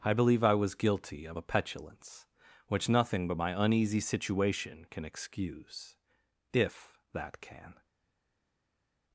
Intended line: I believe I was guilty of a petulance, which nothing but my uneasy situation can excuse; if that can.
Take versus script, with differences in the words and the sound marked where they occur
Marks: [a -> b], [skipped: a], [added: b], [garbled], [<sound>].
I believe I was guilty of a petulance, which nothing but my uneasy situation can excuse; if that can.